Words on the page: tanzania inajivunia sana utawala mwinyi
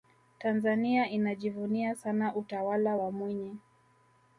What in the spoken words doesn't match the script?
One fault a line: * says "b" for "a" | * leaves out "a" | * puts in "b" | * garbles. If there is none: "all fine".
* puts in "wa"